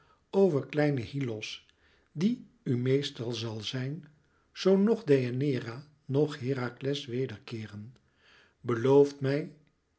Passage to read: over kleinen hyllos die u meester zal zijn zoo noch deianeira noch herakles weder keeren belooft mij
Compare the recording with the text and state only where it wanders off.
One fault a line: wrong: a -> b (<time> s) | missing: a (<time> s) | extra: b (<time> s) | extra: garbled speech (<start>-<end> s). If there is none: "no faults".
no faults